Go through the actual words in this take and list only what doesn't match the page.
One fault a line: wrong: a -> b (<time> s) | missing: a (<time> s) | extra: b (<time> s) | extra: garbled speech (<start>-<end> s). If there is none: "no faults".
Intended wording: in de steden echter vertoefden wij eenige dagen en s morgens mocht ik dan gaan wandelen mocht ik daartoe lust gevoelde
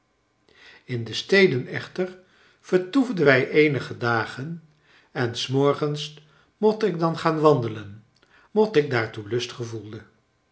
no faults